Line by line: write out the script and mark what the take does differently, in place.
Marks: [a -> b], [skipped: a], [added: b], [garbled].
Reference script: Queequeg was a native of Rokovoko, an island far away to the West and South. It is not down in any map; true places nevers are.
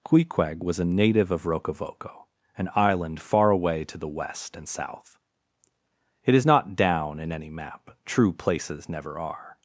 Queequeg was a native of Rokovoko, an island far away to the West and South. It is not down in any map; true places [nevers -> never] are.